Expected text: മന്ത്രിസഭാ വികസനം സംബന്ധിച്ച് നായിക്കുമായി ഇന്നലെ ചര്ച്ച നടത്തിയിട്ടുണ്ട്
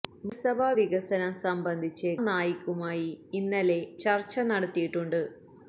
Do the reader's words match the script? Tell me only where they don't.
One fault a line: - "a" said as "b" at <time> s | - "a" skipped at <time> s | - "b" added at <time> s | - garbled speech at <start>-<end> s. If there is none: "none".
none